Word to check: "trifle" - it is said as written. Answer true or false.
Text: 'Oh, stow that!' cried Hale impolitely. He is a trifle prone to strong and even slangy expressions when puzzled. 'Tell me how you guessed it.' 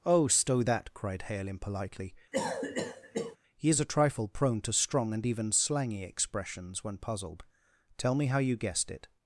true